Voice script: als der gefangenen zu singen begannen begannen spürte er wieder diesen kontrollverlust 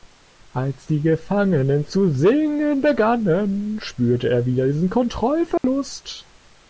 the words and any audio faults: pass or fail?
fail